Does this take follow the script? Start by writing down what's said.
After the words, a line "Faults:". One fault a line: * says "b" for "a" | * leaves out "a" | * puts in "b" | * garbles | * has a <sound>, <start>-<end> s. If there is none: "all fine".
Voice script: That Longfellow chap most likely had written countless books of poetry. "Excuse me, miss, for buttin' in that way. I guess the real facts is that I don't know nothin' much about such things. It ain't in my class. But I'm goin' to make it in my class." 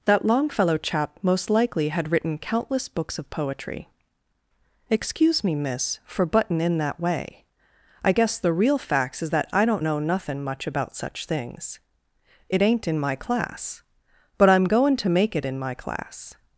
That Longfellow chap most likely had written countless books of poetry. "Excuse me, miss, for buttin' in that way. I guess the real facts is that I don't know nothin' much about such things. It ain't in my class. But I'm goin' to make it in my class."
Faults:
all fine